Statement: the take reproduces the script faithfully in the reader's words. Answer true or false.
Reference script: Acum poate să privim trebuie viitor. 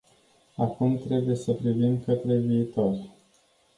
false